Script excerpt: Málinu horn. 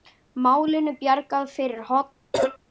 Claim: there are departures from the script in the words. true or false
true